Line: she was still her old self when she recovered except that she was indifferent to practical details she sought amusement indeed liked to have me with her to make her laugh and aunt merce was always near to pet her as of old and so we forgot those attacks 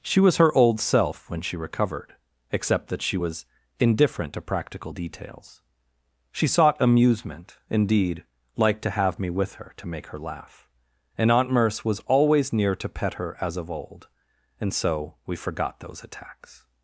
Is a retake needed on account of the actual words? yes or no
yes